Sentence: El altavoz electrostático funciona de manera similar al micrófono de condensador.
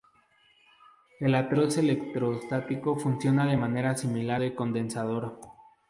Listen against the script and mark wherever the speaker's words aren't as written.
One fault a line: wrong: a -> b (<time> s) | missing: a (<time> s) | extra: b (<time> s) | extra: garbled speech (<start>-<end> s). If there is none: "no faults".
missing: al micrófono (4.4 s)